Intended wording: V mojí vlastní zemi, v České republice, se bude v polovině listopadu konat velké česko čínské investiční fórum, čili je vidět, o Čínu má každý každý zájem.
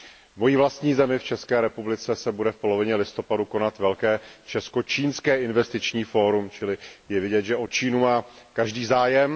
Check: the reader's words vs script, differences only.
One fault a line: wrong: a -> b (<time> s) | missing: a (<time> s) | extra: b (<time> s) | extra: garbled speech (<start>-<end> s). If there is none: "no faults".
extra: že (7.4 s)
missing: každý (8.9 s)